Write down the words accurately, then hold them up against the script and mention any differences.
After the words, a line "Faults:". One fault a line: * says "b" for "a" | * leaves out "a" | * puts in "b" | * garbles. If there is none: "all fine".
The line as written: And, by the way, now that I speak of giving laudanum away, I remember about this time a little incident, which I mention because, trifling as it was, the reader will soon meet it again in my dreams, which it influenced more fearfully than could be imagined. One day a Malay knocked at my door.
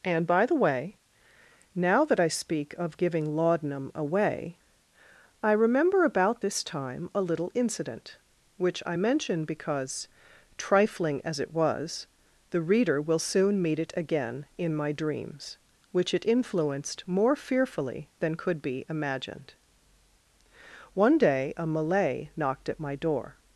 And, by the way, now that I speak of giving laudanum away, I remember about this time a little incident, which I mention because, trifling as it was, the reader will soon meet it again in my dreams, which it influenced more fearfully than could be imagined. One day a Malay knocked at my door.
Faults:
all fine